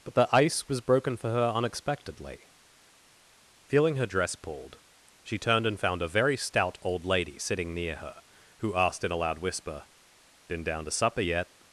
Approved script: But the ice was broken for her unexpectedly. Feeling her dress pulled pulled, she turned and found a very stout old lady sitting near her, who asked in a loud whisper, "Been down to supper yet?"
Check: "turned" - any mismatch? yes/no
no